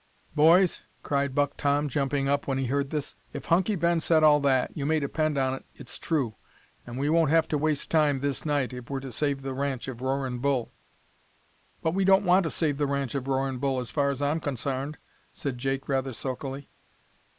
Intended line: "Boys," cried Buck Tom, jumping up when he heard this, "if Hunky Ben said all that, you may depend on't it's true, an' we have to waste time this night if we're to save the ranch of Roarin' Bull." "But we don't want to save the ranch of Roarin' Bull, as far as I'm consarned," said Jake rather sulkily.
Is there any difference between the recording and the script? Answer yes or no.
yes